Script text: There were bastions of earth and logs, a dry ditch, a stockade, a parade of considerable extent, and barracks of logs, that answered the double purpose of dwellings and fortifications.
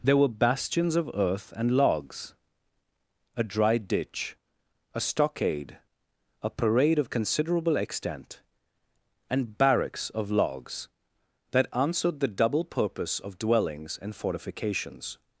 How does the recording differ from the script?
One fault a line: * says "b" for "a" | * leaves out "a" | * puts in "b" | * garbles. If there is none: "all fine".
all fine